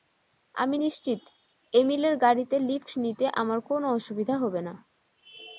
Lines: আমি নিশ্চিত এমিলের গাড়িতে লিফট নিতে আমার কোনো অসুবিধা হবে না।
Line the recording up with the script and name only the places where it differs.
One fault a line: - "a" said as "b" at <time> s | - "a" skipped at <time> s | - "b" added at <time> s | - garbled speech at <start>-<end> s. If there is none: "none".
none